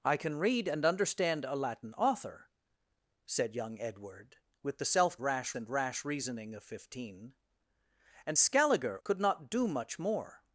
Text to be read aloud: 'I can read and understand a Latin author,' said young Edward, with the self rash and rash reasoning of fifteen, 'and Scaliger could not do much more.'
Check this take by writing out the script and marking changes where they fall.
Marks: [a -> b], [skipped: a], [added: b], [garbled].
'I can read and understand a Latin author,' said young Edward, with the self rash and rash reasoning of fifteen, 'and Scaliger could not do much more.'